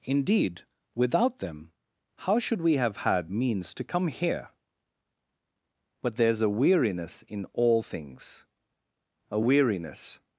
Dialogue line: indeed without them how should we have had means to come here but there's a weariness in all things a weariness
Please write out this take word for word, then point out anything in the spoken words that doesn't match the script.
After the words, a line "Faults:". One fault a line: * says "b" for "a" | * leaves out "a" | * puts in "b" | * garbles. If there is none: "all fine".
indeed without them how should we have had means to come here but there's a weariness in all things a weariness
Faults:
all fine